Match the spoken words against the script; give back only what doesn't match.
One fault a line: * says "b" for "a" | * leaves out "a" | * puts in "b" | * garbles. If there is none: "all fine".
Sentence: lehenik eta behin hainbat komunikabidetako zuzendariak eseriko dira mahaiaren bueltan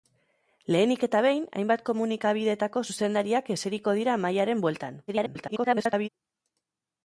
* garbles